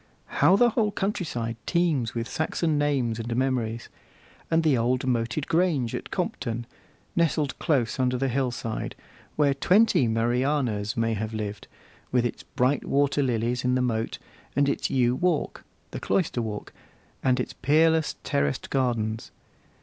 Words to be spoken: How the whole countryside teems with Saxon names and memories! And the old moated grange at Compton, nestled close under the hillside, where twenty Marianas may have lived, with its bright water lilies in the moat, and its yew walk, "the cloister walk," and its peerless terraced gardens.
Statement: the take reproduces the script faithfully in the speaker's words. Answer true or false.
true